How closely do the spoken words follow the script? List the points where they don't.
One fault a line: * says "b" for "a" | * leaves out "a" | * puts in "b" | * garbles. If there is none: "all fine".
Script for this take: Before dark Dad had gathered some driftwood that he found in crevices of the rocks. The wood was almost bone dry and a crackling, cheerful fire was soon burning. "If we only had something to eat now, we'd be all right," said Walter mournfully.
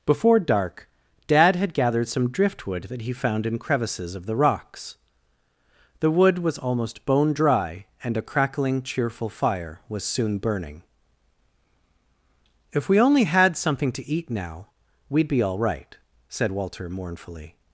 all fine